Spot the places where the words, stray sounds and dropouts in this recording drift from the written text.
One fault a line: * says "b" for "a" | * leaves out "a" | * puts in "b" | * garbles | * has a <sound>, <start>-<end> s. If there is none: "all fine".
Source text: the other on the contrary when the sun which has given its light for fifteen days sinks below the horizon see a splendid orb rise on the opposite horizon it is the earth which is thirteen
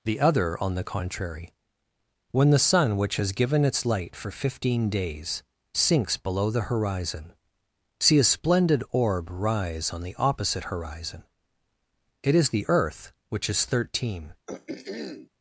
* has a throat clearing, 14.5-15.3 s